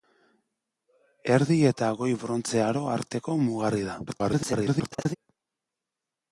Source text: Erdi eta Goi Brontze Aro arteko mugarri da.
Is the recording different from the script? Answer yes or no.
yes